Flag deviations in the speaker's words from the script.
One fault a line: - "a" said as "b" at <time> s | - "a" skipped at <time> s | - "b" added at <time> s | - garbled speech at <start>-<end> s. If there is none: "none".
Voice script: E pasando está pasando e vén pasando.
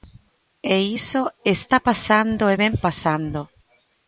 - "pasando" said as "iso" at 1.0 s